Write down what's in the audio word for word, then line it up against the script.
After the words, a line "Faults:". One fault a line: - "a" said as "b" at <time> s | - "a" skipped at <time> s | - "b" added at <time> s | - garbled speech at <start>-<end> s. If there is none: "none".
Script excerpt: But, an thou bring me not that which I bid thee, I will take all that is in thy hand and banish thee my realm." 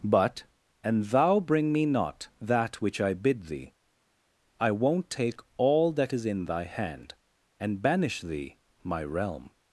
But, an thou bring me not that which I bid thee, I won't take all that is in thy hand and banish thee my realm."
Faults:
- "will" said as "won't" at 4.7 s